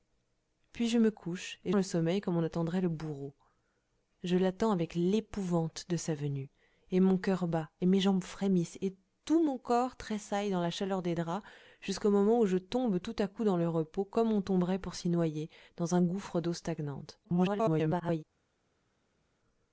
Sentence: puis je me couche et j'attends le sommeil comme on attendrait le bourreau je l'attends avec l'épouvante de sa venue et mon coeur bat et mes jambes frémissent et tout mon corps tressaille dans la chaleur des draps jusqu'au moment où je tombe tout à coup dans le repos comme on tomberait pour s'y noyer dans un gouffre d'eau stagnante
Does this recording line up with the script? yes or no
no